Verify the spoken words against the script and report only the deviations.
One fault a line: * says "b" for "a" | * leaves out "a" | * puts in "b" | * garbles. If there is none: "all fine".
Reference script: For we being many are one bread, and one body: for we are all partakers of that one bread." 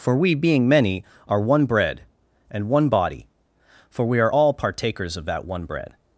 all fine